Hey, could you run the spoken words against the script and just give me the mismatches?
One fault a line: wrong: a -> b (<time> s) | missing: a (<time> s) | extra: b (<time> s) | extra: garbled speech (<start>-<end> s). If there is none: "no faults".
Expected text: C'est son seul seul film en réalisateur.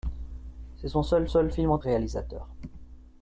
no faults